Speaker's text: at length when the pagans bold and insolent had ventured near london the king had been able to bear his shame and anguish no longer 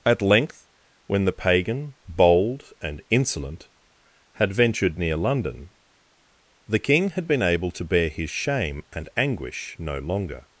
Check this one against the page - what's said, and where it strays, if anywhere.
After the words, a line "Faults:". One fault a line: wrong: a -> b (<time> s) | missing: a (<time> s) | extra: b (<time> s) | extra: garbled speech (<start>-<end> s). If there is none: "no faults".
at length when the pagan bold and insolent had ventured near london the king had been able to bear his shame and anguish no longer
Faults:
wrong: pagans -> pagan (1.3 s)